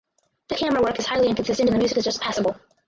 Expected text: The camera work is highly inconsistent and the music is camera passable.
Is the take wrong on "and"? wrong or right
right